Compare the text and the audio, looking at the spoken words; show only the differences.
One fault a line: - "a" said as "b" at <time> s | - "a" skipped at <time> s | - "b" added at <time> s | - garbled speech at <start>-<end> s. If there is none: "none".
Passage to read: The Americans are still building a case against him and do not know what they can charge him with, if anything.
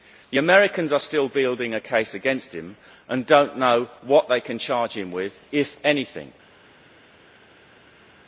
none